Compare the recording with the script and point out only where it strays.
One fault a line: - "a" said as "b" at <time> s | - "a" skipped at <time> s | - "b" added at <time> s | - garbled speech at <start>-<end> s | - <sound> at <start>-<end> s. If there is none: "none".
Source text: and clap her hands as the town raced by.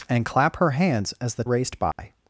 - "town" skipped at 1.4 s
- dropout at 1.9-2.0 s